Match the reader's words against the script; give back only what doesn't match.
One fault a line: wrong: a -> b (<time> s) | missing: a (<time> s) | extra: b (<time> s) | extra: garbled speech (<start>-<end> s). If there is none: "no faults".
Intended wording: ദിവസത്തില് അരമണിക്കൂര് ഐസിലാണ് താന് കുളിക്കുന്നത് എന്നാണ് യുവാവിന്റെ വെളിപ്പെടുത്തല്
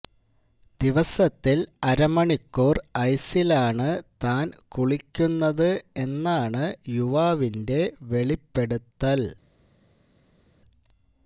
no faults